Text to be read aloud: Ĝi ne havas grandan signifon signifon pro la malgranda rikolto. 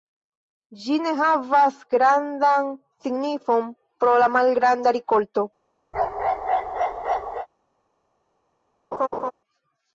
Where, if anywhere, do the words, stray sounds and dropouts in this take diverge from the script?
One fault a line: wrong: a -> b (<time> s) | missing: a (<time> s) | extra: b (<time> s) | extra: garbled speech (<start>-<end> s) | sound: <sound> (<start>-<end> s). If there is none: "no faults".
missing: signifon (3.7 s)
sound: bark (5.9-7.5 s)
sound: laugh (8.9-9.3 s)